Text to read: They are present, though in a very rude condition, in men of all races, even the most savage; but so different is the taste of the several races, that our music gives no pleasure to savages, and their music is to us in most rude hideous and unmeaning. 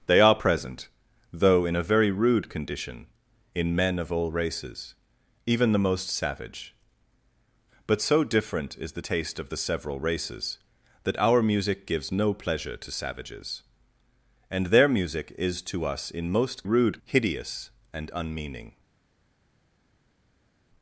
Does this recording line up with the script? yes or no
yes